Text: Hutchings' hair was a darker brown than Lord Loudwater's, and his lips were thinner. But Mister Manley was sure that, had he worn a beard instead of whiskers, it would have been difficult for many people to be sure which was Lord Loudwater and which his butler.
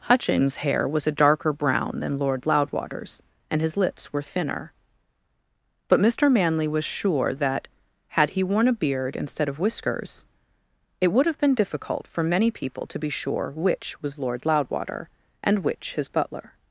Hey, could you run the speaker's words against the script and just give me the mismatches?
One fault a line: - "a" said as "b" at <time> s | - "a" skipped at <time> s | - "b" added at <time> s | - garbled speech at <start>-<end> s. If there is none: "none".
none